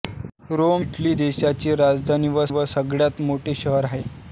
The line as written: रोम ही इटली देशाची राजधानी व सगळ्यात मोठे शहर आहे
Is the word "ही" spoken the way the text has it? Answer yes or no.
no